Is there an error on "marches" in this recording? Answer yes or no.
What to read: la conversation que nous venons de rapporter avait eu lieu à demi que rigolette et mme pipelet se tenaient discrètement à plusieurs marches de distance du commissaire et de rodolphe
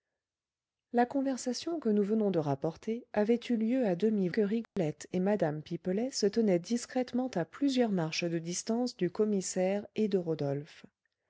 no